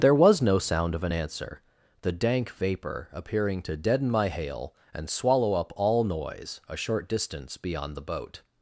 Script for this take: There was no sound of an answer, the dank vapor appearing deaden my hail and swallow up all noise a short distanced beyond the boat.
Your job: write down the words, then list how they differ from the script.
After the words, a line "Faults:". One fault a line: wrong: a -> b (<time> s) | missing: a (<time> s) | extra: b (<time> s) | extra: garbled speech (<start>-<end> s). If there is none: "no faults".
There was no sound of an answer, the dank vapor appearing to deaden my hail and swallow up all noise a short distance beyond the boat.
Faults:
extra: to (3.6 s)
wrong: distanced -> distance (7.1 s)